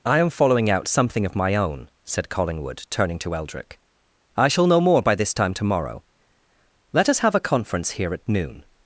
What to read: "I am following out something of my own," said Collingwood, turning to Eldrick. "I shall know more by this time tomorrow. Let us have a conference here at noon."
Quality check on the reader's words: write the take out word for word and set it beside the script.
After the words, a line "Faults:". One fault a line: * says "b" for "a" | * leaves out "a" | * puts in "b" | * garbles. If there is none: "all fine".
"I am following out something of my own," said Collingwood, turning to Eldrick. "I shall know more by this time tomorrow. Let us have a conference here at noon."
Faults:
all fine